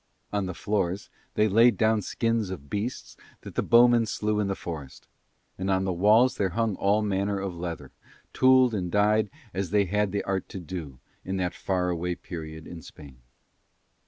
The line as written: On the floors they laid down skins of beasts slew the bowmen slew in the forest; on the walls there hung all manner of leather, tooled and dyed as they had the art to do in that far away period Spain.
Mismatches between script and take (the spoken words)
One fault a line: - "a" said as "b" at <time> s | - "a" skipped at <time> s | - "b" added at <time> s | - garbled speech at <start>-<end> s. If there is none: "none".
- "slew" said as "that" at 3.4 s
- "and" added at 5.6 s
- "in" added at 12.6 s